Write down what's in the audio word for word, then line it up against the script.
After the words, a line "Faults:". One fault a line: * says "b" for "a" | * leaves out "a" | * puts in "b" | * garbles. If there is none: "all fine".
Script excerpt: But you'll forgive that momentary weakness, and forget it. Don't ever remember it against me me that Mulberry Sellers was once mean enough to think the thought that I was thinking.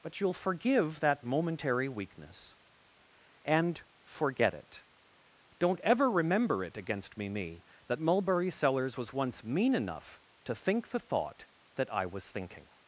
But you'll forgive that momentary weakness, and forget it. Don't ever remember it against me me that Mulberry Sellers was once mean enough to think the thought that I was thinking.
Faults:
all fine